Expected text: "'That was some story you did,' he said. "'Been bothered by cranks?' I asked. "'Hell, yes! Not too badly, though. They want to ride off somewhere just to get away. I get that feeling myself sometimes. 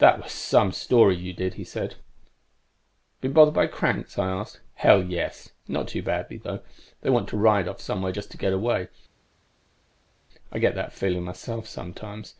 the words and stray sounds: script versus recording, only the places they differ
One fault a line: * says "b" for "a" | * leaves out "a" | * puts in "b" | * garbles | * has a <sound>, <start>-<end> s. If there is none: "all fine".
all fine